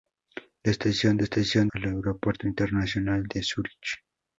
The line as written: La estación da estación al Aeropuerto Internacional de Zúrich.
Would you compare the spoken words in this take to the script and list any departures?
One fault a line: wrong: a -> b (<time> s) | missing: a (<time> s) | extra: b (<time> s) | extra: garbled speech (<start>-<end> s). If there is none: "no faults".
no faults